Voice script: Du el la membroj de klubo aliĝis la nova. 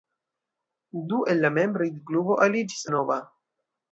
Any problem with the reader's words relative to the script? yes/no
no